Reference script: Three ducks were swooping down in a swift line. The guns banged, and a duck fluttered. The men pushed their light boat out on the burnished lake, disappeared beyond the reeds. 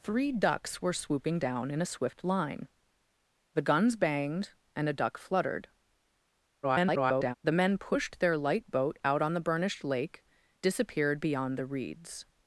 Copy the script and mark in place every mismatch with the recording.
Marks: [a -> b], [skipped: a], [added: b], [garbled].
Three ducks were swooping down in a swift line. The guns banged, and a duck fluttered. [garbled] The men pushed their light boat out on the burnished lake, disappeared beyond the reeds.